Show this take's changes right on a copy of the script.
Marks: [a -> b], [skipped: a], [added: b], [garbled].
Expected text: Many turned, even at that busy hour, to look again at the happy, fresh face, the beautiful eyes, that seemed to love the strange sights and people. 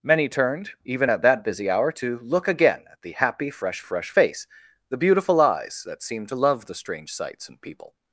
Many turned, even at that busy hour, to look again at the happy, fresh [added: fresh] face, the beautiful eyes, that seemed to love the strange sights and people.